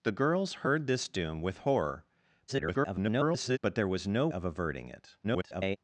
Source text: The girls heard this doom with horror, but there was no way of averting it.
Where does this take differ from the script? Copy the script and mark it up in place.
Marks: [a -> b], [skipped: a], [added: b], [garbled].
The girls heard this doom with horror, [garbled] but there was no [skipped: way] of averting it. [garbled]